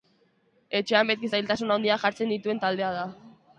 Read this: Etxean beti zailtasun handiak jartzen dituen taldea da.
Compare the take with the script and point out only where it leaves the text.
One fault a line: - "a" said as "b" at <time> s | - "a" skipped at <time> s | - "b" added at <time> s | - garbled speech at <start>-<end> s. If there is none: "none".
none